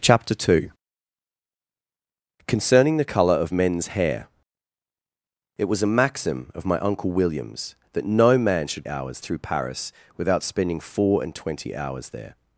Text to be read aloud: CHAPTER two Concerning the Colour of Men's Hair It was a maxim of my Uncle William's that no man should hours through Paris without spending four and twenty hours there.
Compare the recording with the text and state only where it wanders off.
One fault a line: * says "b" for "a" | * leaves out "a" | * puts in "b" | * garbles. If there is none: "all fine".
all fine